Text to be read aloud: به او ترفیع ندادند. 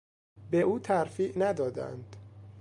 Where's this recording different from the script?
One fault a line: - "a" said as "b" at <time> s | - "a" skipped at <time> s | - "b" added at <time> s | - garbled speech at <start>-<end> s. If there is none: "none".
none